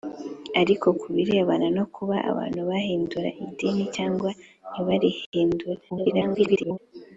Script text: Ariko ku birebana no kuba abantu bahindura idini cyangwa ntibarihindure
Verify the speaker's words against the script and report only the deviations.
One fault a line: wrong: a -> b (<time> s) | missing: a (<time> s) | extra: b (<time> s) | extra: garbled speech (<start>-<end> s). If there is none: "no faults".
extra: garbled speech (5.9-6.8 s)